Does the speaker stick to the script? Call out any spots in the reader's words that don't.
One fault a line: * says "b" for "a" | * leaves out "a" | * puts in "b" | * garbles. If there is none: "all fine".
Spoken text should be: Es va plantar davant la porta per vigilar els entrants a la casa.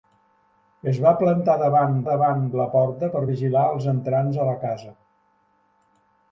* puts in "davant"